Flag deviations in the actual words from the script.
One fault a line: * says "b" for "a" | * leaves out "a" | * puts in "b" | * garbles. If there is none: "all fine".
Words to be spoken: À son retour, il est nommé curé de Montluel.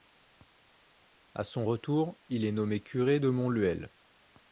all fine